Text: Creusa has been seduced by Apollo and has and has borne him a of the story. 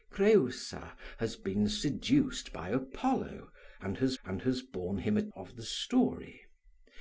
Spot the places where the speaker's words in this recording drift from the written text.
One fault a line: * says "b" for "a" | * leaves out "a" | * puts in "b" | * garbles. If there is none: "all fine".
all fine